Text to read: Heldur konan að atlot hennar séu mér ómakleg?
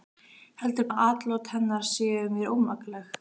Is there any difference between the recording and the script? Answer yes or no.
yes